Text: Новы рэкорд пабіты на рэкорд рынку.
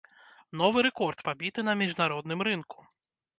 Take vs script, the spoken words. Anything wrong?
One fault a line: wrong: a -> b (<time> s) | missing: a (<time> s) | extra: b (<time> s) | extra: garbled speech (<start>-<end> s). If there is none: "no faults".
wrong: рэкорд -> міжнародным (1.8 s)